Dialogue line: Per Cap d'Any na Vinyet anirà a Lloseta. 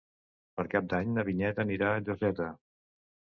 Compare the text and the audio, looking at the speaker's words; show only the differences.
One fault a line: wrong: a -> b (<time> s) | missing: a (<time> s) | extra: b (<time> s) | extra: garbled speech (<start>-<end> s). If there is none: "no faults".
no faults